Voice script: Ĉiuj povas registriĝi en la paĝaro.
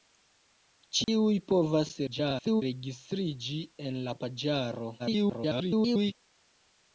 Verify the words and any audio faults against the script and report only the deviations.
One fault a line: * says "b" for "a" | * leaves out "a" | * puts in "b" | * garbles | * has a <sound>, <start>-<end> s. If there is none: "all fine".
* has a dropout, 1.0-1.1 s
* garbles
* garbles